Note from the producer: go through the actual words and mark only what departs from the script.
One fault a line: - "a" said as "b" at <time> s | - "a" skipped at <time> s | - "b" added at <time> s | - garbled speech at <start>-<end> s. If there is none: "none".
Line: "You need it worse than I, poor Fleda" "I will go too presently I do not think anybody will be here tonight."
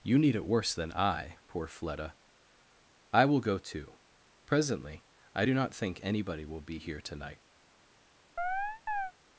none